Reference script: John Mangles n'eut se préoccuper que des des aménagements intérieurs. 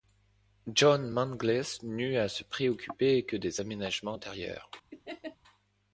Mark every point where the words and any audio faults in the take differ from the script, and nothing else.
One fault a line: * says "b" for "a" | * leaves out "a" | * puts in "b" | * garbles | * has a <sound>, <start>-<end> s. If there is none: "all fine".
* puts in "à"
* leaves out "des"
* has a laugh, 4.9-5.4 s